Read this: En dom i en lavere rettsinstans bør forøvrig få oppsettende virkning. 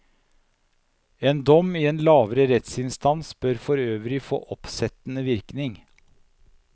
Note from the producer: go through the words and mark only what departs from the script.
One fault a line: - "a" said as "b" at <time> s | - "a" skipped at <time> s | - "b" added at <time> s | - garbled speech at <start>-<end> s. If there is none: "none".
none